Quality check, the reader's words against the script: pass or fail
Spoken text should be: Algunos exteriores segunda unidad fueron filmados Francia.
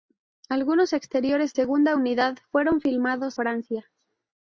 pass